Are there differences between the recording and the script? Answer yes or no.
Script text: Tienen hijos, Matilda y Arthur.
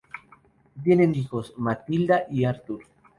no